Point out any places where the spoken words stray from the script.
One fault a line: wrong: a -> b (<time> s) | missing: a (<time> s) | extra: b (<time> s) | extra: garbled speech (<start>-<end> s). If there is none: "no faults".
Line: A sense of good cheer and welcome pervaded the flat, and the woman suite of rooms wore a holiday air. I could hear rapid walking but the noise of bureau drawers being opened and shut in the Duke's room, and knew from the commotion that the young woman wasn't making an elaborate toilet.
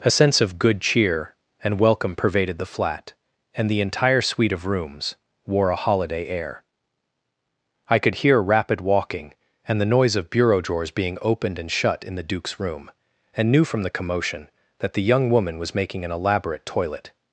wrong: woman -> entire (3.8 s)
wrong: but -> and (9.7 s)
wrong: wasn't -> was (15.6 s)